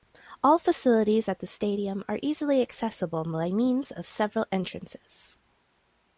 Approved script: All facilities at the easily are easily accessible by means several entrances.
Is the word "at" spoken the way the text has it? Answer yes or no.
yes